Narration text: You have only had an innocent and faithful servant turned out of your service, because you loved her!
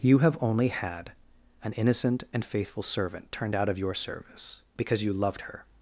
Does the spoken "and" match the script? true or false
true